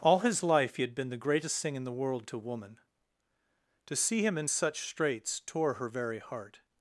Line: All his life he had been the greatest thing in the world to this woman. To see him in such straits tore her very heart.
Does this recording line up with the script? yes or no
no